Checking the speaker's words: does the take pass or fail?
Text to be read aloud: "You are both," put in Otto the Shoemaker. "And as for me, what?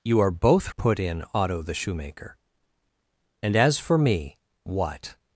pass